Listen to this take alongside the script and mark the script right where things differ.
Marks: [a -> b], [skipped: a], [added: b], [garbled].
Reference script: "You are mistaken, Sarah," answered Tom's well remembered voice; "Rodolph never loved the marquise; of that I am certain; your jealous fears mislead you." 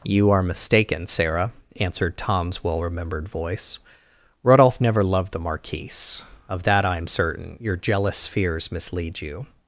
"You are mistaken, Sarah," answered Tom's well remembered voice; "Rodolph never loved the marquise; of that I am certain; your jealous fears mislead you."